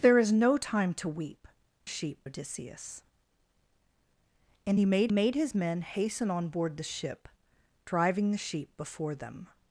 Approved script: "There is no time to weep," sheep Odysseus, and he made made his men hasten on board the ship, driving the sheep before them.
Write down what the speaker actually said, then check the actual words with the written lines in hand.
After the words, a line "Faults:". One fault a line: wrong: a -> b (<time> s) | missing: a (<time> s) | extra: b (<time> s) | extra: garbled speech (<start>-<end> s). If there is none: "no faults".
"There is no time to weep," sheep Odysseus, and he made made his men hasten on board the ship, driving the sheep before them.
Faults:
no faults